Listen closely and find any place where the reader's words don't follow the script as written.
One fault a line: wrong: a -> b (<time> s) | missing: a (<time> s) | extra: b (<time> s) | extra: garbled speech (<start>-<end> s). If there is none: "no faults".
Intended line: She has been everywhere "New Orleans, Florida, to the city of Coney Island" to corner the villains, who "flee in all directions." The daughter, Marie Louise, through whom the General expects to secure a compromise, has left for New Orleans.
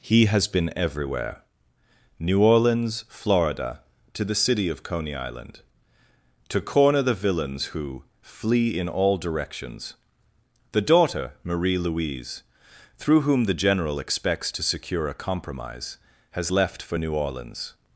wrong: She -> He (0.0 s)